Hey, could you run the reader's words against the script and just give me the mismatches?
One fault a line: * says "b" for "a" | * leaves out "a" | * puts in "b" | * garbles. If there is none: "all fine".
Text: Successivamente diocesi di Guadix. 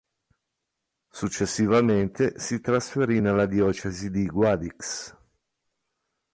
* puts in "si trasferì nella"